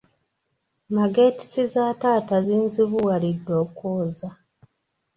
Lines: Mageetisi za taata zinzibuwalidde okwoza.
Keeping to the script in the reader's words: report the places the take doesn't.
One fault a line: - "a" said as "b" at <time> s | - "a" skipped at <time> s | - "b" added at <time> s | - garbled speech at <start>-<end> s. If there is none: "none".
none